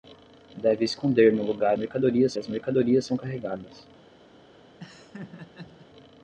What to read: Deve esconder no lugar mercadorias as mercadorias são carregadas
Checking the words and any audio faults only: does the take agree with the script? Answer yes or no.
no